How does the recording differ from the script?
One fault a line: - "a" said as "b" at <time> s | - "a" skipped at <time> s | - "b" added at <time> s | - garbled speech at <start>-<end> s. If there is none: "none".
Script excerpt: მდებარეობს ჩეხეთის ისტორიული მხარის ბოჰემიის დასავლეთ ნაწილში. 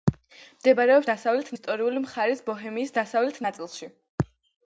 - "ჩეხეთის" said as "დასავლეთ" at 1.1 s